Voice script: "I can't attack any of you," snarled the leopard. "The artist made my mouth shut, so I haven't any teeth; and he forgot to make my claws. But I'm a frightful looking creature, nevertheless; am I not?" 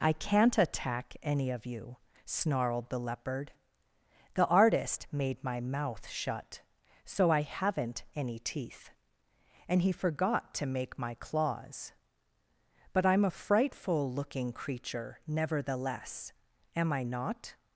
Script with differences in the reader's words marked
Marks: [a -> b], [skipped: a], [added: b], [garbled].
"I can't attack any of you," snarled the leopard. "The artist made my mouth shut, so I haven't any teeth; and he forgot to make my claws. But I'm a frightful looking creature, nevertheless; am I not?"